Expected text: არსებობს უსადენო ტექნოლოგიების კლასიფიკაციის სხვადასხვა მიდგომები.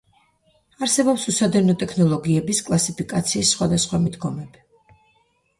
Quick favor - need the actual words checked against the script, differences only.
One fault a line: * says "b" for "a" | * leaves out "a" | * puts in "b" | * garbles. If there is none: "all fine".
all fine